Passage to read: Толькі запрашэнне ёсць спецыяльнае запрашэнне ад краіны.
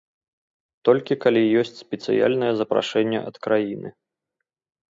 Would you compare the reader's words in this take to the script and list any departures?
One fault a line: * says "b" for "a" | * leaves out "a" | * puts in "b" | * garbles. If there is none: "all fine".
* says "калі" for "запрашэнне"